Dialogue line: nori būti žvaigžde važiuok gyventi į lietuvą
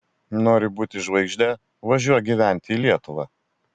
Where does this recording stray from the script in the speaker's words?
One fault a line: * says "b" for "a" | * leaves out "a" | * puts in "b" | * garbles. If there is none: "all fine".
all fine